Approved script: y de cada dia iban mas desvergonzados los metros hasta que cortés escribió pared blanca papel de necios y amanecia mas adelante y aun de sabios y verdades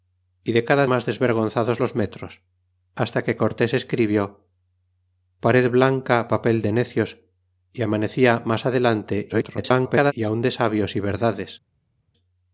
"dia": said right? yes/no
no